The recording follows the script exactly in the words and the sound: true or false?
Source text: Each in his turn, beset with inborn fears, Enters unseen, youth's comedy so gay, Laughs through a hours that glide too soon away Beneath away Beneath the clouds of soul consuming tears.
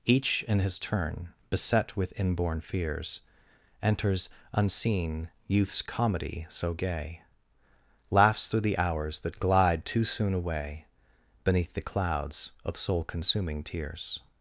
false